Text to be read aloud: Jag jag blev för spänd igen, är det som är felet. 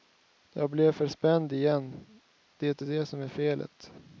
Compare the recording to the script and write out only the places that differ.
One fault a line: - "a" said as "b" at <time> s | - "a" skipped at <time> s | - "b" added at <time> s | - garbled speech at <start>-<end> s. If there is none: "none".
- "jag" skipped at 0.7 s
- "det" added at 2.6 s